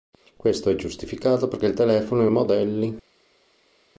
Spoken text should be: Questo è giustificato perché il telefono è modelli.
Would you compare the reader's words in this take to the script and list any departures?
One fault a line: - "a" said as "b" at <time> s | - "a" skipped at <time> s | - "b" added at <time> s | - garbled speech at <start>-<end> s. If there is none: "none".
none